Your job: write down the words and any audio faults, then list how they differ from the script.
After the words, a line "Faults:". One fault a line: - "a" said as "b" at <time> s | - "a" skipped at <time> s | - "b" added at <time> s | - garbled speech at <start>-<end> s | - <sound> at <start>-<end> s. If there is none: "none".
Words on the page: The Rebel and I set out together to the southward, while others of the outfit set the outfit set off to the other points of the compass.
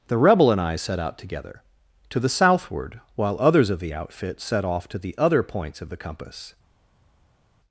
The Rebel and I set out together to the southward, while others of the outfit set off to the other points of the compass.
Faults:
- "the outfit set" skipped at 4.7 s